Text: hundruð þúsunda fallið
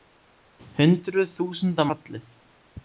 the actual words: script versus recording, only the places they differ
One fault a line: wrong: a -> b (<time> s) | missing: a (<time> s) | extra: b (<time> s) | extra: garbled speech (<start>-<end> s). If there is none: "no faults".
no faults